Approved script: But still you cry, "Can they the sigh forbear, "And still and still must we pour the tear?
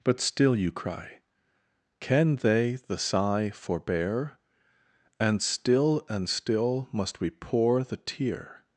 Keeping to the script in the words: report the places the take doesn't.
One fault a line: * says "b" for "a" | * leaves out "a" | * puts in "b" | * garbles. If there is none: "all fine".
all fine